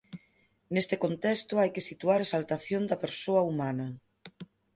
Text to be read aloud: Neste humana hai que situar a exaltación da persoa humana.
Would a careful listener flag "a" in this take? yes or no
no